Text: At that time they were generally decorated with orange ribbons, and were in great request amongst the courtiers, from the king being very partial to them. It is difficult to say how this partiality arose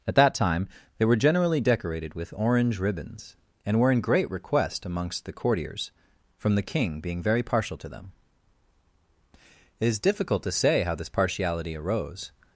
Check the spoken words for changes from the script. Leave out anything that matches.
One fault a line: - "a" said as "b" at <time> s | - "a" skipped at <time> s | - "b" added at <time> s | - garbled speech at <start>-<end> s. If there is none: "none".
none